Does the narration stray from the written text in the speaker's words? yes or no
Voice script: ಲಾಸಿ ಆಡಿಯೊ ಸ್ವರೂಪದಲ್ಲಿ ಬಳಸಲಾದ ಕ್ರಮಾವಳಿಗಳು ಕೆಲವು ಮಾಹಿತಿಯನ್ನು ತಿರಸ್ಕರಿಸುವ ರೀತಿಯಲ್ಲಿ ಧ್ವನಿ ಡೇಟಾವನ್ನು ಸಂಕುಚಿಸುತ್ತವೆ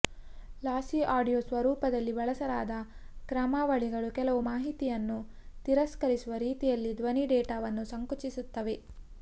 no